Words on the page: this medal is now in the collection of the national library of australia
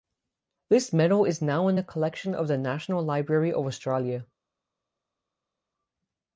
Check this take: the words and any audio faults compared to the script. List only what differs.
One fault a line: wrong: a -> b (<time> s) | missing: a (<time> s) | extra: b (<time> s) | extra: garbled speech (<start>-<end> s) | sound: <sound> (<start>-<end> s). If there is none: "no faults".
no faults